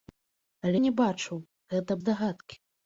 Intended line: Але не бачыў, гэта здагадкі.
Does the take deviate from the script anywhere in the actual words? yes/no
no